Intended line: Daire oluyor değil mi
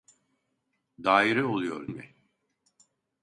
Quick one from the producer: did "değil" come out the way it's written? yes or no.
no